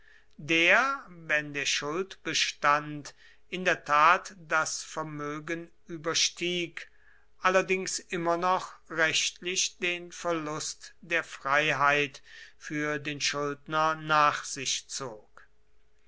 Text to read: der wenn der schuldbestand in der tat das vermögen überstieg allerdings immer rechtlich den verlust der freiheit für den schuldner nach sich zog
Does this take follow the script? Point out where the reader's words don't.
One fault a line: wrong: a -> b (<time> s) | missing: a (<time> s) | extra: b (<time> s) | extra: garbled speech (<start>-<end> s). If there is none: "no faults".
extra: noch (8.3 s)